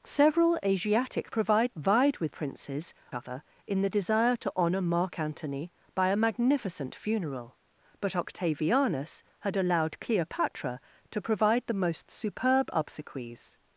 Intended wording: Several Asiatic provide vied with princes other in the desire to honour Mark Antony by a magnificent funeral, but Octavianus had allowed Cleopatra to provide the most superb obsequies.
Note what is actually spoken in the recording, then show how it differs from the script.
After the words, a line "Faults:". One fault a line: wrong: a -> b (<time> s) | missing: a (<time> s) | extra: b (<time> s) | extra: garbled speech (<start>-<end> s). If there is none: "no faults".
Several Asiatic provide vied with princes other in the desire to honour Mark Antony by a magnificent funeral, but Octavianus had allowed Cleopatra to provide the most superb obsequies.
Faults:
no faults